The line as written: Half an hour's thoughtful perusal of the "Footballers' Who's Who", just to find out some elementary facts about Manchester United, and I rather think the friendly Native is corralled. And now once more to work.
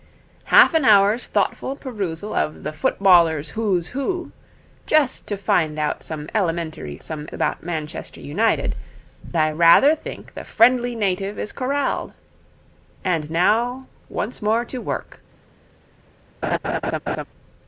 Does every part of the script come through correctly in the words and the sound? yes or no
no